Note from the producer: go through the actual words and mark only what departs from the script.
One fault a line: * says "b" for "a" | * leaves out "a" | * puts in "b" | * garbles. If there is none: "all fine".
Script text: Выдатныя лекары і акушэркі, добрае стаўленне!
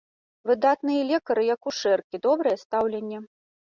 all fine